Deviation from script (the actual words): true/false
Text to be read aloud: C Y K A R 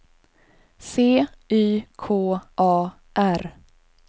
false